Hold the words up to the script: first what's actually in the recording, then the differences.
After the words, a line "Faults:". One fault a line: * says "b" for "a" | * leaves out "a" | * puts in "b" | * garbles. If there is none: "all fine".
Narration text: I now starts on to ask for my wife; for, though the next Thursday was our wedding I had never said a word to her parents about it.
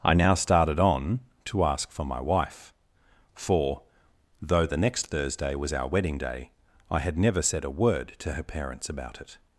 I now started on to ask for my wife; for, though the next Thursday was our wedding day, I had never said a word to her parents about it.
Faults:
* says "started" for "starts"
* puts in "day"